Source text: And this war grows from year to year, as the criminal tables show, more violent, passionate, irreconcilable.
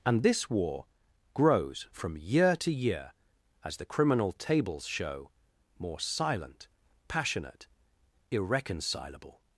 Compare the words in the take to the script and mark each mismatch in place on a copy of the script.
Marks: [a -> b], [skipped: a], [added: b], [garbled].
And this war grows from year to year, as the criminal tables show, more [violent, -> silent] passionate, irreconcilable.